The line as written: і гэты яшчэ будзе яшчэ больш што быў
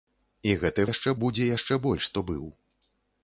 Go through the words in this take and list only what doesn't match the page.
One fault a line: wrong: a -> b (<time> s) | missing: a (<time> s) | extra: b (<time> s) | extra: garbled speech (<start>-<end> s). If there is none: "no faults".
no faults